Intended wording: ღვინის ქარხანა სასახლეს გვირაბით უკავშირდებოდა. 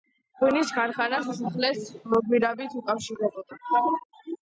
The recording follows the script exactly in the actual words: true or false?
true